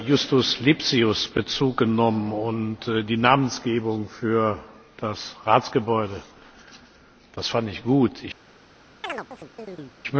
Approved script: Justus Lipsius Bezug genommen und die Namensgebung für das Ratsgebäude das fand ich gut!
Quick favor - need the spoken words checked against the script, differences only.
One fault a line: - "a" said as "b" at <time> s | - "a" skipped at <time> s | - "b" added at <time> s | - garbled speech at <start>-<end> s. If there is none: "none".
none